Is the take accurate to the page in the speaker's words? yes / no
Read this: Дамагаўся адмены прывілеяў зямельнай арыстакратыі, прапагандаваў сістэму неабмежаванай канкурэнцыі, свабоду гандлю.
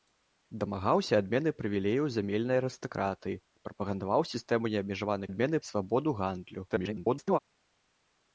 no